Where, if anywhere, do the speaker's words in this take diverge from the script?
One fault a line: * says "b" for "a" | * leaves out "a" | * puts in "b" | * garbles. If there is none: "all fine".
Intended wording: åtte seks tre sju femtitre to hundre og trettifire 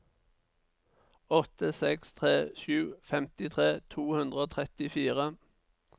all fine